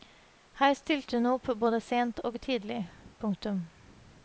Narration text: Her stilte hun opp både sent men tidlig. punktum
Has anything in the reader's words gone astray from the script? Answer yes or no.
yes